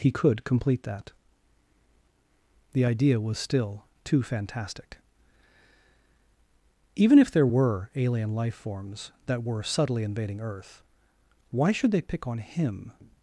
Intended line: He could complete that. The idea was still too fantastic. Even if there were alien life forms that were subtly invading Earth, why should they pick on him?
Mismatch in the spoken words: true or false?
false